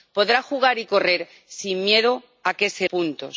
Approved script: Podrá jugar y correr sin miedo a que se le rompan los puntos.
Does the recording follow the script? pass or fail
fail